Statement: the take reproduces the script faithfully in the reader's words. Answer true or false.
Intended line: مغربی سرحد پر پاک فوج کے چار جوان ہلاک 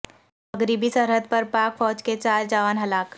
true